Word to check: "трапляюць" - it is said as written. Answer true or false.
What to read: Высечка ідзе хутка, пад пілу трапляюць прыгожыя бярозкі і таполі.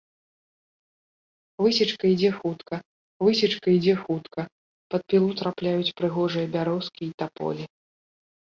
true